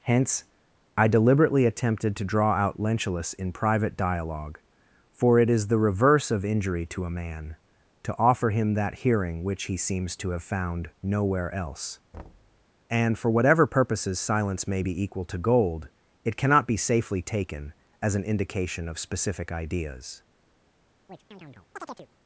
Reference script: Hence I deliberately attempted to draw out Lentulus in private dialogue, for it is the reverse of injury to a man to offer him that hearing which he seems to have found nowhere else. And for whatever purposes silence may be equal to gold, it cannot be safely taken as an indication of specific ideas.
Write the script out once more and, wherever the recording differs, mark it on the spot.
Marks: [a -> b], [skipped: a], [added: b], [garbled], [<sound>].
Hence I deliberately attempted to draw out Lentulus in private dialogue, for it is the reverse of injury to a man to offer him that hearing which he seems to have found nowhere else. [thud] And for whatever purposes silence may be equal to gold, it cannot be safely taken as an indication of specific ideas. [chirp]